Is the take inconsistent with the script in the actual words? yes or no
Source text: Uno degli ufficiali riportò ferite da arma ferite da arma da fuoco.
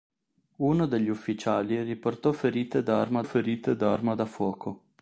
no